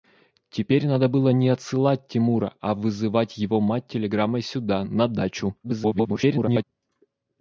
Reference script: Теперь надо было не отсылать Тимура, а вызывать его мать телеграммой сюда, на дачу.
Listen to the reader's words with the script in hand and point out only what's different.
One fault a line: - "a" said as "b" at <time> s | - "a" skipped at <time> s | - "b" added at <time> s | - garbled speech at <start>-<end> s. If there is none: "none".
- garbled speech at 5.6-6.6 s